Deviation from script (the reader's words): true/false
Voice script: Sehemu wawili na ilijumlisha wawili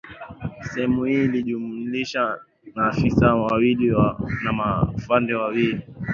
true